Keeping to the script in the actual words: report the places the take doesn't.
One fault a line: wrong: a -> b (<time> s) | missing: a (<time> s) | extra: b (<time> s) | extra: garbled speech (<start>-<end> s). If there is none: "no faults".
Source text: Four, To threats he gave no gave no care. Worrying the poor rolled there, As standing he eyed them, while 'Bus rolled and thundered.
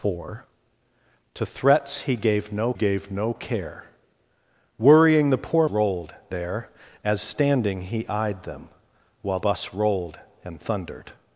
no faults